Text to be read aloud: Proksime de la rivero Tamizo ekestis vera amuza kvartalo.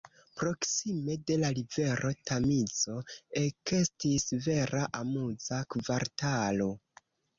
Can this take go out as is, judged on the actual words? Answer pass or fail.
pass